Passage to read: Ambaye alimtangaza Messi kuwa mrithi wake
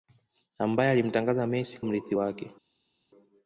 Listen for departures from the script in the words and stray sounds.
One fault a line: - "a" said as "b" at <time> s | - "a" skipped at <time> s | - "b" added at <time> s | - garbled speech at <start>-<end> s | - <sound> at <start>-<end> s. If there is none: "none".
- "kuwa" skipped at 1.8 s